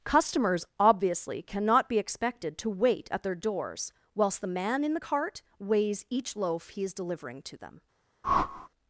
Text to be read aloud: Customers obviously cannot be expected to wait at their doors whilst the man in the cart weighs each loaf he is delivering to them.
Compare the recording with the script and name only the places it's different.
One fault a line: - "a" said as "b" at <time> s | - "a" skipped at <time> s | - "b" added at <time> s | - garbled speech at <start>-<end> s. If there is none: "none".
none